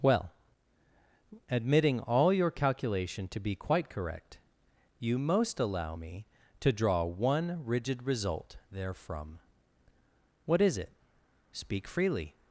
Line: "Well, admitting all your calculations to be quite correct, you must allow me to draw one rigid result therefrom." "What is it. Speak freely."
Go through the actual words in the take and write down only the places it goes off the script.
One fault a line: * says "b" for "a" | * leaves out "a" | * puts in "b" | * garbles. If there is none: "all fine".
* says "calculation" for "calculations"
* says "most" for "must"